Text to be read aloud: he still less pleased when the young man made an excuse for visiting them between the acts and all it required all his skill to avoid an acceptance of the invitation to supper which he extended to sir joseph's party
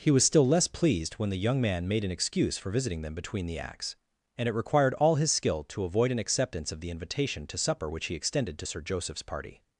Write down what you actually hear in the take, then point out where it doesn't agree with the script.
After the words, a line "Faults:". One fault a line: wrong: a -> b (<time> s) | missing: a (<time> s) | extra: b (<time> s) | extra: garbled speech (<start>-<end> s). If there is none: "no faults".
he was still less pleased when the young man made an excuse for visiting them between the acts and it required all his skill to avoid an acceptance of the invitation to supper which he extended to sir joseph's party
Faults:
extra: was (0.1 s)
missing: all (4.5 s)